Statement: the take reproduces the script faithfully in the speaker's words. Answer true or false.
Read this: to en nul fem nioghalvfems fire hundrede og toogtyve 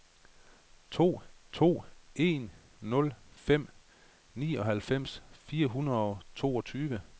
false